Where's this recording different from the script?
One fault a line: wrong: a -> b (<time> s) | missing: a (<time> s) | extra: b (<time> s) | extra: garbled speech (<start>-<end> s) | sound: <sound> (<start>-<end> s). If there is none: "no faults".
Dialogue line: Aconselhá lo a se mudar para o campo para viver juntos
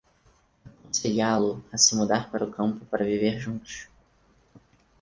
no faults